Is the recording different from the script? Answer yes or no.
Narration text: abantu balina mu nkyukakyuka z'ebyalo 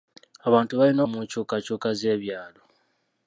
no